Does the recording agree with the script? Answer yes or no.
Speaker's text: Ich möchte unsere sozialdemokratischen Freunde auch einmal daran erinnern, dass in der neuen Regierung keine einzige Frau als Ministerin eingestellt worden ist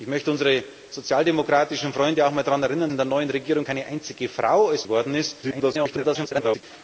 no